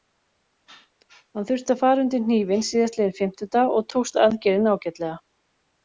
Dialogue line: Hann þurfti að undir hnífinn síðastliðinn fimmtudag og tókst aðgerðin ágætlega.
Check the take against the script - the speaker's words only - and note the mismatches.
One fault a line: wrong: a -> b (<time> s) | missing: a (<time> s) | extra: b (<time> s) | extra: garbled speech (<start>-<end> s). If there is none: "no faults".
extra: fara (1.8 s)